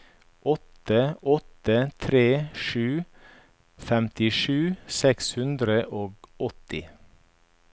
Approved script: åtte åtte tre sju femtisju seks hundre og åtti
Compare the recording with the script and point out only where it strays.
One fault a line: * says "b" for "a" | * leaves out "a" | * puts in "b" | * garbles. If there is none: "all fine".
all fine